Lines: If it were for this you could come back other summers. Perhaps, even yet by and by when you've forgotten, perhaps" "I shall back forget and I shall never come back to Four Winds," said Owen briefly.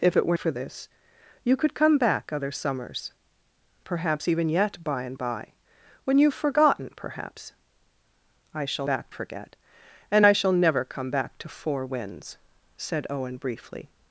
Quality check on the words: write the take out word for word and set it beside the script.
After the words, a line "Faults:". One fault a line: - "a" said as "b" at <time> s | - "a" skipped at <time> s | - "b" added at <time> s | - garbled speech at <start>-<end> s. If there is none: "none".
If it were for this you could come back other summers. Perhaps, even yet by and by when you've forgotten, perhaps" "I shall back forget and I shall never come back to Four Winds," said Owen briefly.
Faults:
none